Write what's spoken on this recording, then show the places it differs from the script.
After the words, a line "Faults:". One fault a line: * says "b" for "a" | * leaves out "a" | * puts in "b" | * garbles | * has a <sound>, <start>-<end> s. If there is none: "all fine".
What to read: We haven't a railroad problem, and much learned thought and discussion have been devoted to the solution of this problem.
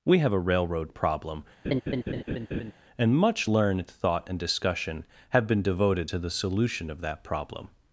We have a railroad problem, and much learned thought and discussion have been devoted to the solution of that problem.
Faults:
* says "have" for "haven't"
* has a laugh, 1.6-2.7 s
* says "that" for "this"